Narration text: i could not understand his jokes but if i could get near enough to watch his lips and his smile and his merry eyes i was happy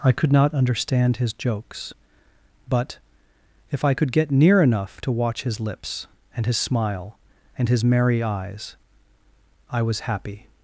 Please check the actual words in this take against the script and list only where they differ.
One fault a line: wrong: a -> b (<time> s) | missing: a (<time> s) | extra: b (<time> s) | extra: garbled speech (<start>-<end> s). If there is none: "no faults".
no faults